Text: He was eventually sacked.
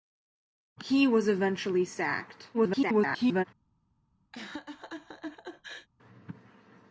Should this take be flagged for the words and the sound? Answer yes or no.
yes